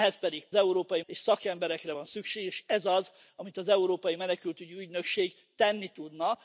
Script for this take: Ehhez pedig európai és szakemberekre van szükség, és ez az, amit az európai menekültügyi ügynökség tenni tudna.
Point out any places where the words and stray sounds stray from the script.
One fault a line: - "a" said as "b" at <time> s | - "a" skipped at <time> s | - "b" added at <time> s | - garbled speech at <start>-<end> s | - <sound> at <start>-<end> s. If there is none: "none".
none